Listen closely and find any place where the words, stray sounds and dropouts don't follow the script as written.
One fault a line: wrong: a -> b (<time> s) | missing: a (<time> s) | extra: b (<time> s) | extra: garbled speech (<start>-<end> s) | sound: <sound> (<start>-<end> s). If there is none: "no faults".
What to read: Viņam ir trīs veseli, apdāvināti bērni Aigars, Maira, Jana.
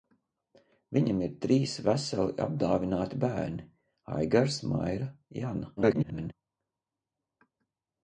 extra: garbled speech (5.8-6.3 s)